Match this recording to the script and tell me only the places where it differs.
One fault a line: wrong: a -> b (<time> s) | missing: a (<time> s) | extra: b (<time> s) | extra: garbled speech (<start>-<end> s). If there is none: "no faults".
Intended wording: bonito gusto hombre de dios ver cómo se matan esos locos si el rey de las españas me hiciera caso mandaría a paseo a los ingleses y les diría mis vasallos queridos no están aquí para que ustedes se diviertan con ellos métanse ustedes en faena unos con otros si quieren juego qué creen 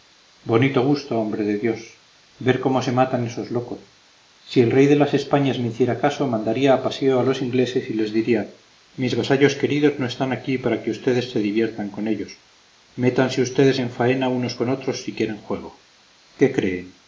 no faults